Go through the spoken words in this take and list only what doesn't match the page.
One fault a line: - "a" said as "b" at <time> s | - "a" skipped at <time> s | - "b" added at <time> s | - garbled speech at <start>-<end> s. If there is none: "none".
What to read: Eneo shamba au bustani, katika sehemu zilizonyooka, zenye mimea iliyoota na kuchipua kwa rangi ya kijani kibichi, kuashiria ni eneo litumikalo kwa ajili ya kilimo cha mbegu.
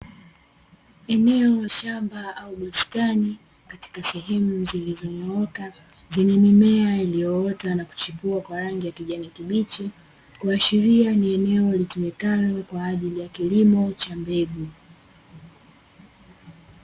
none